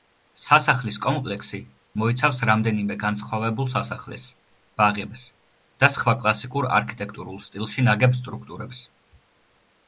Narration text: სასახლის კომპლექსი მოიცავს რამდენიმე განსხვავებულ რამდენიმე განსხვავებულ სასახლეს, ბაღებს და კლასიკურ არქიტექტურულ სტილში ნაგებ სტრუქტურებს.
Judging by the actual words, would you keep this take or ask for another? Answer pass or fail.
fail